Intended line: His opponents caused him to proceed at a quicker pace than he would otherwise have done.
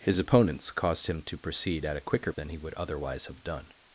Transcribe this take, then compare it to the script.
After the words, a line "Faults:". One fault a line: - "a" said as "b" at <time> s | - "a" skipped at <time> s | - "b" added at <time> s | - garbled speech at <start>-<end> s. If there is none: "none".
His opponents caused him to proceed at a quicker than he would otherwise have done.
Faults:
- "pace" skipped at 2.3 s